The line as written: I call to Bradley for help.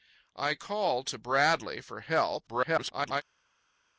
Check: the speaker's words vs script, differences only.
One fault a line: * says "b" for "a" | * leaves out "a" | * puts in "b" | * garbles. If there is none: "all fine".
* garbles